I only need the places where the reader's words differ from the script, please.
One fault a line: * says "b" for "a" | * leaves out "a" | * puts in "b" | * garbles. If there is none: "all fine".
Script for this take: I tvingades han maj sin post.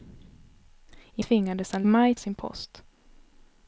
all fine